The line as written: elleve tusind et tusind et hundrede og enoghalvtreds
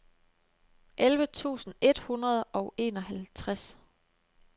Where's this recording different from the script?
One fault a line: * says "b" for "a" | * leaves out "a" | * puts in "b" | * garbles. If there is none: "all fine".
* leaves out "tusind et"